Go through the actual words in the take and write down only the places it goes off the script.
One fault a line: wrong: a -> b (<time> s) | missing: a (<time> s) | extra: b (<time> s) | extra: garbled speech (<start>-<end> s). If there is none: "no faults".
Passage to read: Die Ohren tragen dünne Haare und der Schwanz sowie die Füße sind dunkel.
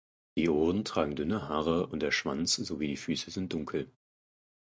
no faults